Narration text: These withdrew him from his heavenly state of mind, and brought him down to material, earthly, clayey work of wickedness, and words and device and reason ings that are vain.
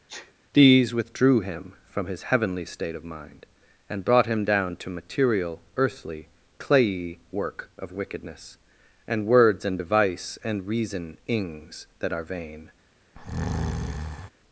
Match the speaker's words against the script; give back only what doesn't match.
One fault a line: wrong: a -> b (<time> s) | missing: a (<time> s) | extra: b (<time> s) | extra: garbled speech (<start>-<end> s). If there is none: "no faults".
no faults